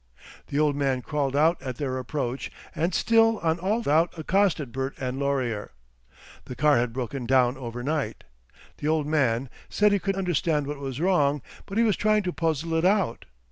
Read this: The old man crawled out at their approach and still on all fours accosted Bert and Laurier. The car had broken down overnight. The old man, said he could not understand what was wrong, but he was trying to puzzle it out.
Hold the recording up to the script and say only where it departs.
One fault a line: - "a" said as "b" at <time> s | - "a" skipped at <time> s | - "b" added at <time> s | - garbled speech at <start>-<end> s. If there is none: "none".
- "fours" said as "out" at 3.9 s
- "not" skipped at 10.2 s